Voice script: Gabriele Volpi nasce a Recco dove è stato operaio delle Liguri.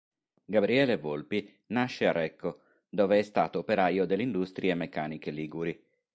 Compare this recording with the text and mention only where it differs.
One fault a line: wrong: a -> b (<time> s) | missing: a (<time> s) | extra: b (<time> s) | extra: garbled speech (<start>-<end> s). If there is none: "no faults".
extra: Industrie Meccaniche (4.2 s)